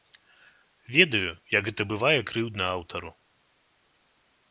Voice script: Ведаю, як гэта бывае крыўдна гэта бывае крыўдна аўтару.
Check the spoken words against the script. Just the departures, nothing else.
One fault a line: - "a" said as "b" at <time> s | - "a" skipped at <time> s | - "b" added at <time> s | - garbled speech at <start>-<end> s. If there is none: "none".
- "гэта бывае крыўдна" skipped at 2.6 s